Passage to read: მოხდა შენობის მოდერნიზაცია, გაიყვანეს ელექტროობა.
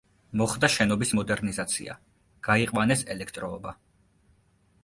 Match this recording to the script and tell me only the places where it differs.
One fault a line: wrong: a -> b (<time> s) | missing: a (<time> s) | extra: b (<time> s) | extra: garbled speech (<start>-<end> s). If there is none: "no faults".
no faults